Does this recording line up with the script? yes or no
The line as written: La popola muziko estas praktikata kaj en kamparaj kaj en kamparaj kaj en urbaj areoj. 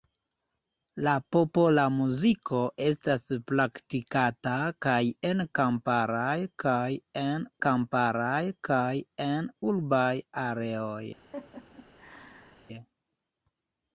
yes